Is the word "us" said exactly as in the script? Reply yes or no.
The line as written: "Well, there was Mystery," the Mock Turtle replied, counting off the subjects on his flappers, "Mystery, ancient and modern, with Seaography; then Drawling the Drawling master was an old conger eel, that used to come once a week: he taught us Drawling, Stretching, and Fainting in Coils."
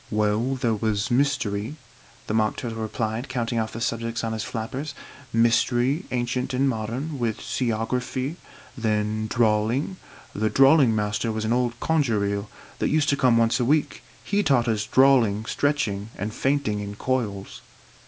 yes